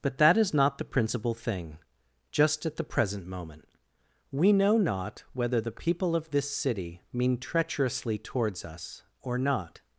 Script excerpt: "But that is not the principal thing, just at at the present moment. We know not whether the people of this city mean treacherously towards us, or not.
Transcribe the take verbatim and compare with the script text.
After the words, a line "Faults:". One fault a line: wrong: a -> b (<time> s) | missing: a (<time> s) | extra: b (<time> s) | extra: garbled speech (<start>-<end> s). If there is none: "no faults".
"But that is not the principal thing, just at the present moment. We know not whether the people of this city mean treacherously towards us, or not.
Faults:
missing: at (2.8 s)